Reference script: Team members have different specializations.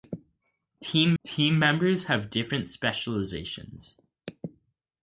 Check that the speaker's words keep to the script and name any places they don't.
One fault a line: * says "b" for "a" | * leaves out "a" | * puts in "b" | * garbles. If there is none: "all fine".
* puts in "team"